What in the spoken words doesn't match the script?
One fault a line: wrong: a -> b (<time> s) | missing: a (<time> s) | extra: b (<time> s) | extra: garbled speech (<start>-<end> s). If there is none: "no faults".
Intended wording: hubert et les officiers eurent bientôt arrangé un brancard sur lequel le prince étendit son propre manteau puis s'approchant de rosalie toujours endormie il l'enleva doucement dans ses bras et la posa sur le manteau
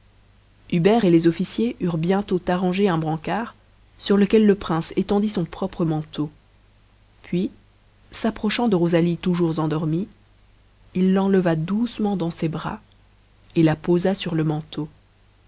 no faults